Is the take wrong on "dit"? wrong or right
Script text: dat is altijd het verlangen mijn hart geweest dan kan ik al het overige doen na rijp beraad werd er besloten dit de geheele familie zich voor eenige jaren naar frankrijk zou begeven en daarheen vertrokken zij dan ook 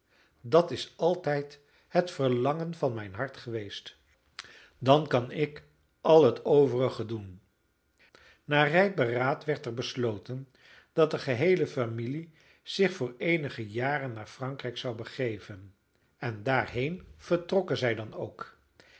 wrong